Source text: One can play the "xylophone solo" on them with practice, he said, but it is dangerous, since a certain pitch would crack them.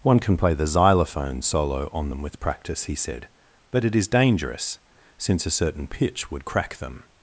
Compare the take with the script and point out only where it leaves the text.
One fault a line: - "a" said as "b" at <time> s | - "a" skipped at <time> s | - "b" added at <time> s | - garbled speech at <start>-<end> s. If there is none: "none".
none